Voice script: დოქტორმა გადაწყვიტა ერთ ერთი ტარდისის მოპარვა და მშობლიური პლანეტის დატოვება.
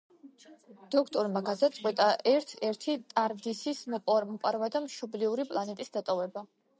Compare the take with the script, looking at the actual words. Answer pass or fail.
pass